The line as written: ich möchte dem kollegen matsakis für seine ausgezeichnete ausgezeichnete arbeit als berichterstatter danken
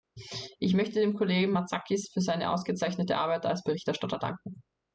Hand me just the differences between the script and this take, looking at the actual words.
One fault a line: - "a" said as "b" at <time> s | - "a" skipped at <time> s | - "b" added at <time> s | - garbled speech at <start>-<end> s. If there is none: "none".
- "ausgezeichnete" skipped at 3.2 s